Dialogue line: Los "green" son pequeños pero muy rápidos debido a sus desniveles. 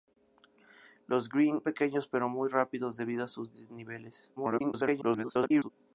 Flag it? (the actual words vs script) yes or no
yes